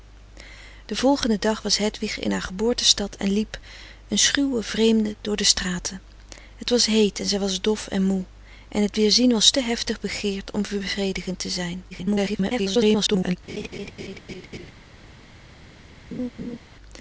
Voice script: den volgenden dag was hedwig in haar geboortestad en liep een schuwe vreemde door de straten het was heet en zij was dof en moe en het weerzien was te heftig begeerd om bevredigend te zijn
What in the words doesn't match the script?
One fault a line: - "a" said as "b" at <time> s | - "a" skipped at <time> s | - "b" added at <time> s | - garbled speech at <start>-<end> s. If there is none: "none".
- garbled speech at 11.9-13.4 s